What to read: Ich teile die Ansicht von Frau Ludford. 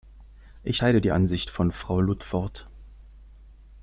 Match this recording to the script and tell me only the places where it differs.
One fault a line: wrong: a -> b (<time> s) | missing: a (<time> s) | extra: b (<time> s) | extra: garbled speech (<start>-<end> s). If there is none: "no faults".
no faults